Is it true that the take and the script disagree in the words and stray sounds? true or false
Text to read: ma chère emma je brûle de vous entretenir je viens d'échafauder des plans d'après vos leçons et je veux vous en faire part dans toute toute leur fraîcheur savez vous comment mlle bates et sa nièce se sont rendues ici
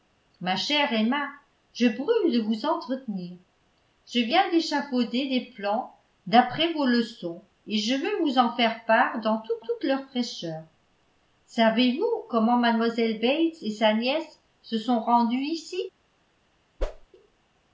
true